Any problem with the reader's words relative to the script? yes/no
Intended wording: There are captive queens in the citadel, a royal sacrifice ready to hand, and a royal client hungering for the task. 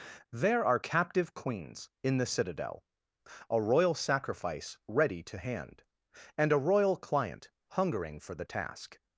no